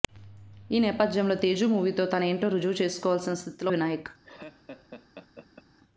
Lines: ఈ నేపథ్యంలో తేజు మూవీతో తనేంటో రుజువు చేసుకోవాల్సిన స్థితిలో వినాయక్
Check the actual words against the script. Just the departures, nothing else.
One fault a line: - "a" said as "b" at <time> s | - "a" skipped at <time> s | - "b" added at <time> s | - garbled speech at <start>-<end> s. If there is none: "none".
none